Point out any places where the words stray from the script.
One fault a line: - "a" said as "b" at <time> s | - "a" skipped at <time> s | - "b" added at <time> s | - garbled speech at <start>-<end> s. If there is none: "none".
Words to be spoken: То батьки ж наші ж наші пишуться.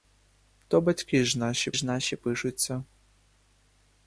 none